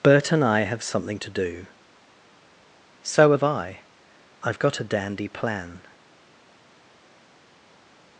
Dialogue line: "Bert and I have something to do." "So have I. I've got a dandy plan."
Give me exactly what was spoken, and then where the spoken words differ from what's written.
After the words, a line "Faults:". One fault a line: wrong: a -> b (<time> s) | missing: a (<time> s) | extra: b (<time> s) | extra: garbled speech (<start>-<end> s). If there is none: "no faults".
"Bert and I have something to do." "So have I. I've got a dandy plan."
Faults:
no faults